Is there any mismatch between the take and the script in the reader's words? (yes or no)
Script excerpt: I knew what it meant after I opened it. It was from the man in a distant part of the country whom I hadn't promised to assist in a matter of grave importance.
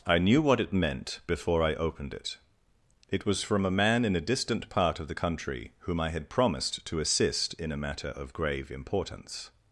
yes